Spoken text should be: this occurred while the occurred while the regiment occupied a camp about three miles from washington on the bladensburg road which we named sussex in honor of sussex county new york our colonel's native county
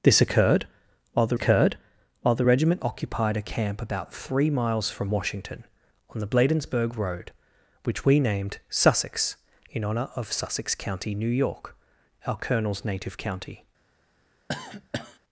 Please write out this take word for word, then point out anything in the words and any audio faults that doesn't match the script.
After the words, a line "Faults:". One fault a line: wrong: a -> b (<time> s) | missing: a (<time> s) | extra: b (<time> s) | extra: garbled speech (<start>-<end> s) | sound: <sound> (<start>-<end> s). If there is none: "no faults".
this occurred while the occurred while the regiment occupied a camp about three miles from washington on the bladensburg road which we named sussex in honor of sussex county new york our colonel's native county
Faults:
sound: cough (14.5-15.2 s)